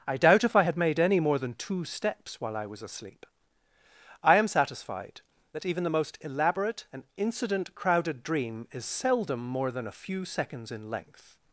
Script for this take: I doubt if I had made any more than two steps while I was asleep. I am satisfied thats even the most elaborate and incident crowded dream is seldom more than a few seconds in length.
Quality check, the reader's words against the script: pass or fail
fail